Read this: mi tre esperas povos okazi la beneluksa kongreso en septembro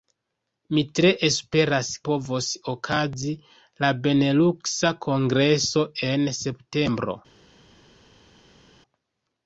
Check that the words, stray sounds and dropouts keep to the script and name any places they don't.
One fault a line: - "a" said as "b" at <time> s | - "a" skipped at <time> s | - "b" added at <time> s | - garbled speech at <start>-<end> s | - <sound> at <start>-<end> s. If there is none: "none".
none